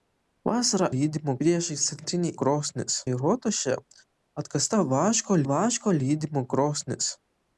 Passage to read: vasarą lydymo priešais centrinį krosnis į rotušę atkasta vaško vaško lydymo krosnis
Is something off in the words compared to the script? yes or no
no